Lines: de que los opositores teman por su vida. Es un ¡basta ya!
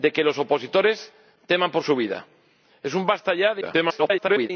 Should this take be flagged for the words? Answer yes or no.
yes